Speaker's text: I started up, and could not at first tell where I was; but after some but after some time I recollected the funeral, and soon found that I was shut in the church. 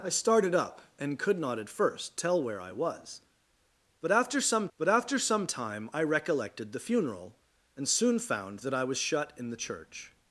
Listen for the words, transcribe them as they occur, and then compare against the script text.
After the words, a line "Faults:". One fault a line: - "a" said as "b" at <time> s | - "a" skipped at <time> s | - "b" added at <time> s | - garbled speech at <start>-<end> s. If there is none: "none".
I started up, and could not at first tell where I was; but after some but after some time I recollected the funeral, and soon found that I was shut in the church.
Faults:
none